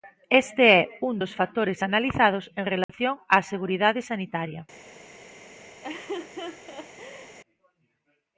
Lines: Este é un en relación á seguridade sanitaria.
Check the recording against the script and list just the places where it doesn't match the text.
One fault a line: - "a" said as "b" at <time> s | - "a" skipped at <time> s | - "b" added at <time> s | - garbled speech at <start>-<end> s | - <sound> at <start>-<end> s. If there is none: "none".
- "dos factores analizados" added at 1.2 s
- dropout at 2.8-2.9 s
- laugh at 5.8-7.4 s